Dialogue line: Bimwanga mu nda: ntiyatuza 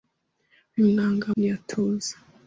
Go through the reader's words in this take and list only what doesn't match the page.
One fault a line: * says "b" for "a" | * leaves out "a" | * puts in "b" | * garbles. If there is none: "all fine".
* leaves out "mu nda"